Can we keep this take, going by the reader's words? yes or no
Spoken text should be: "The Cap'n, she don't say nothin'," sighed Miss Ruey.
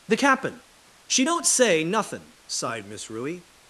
yes